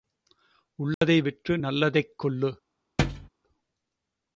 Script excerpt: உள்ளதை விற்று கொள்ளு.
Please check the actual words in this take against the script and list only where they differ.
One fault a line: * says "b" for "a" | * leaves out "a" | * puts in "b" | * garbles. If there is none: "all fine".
* puts in "நல்லதைக்"